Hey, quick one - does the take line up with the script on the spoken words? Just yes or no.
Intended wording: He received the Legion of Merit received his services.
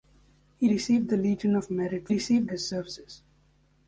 yes